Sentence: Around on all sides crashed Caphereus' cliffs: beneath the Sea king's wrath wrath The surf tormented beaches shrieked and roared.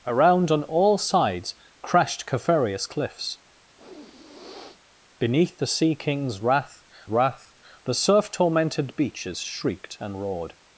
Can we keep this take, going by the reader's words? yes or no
yes